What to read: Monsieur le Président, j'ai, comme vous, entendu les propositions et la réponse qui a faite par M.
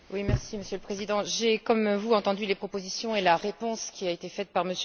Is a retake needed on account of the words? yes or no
yes